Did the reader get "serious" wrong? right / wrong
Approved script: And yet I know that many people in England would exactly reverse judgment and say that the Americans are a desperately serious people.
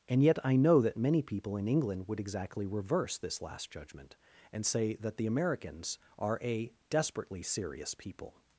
right